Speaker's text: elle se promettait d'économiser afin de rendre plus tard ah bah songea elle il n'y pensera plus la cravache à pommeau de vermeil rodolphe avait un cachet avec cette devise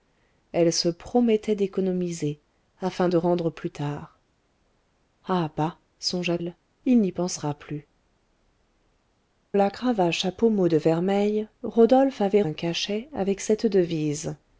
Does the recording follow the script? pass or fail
pass